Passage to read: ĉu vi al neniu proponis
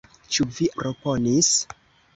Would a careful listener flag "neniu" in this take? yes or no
yes